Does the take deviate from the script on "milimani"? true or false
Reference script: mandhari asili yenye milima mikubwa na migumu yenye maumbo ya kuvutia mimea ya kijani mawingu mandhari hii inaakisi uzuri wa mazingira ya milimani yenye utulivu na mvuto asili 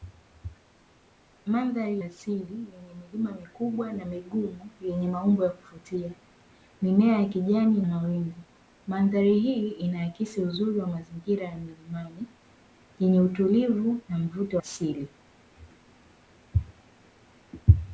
false